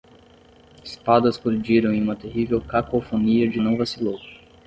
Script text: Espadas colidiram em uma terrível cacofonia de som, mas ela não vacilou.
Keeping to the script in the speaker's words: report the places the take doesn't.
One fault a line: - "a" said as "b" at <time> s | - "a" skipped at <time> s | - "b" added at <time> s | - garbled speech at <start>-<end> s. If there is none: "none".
- "som mas ela" skipped at 3.6 s